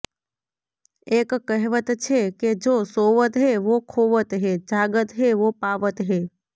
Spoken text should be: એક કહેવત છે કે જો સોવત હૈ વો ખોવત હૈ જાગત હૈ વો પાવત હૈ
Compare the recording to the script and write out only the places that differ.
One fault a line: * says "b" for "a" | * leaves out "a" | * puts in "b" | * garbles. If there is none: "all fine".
all fine